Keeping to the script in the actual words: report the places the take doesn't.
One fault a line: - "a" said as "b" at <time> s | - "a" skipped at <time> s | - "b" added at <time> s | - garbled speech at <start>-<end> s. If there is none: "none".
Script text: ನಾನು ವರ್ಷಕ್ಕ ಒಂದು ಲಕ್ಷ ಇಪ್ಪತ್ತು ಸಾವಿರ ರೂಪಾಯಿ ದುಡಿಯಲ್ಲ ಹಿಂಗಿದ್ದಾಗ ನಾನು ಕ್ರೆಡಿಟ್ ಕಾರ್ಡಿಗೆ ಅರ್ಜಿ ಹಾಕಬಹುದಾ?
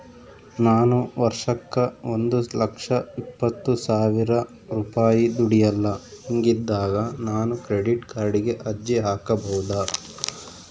none